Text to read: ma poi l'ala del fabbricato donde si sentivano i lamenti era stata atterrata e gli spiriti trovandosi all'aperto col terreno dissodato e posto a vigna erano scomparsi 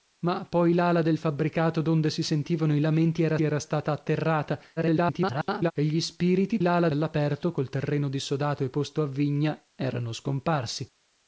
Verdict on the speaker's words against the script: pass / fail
fail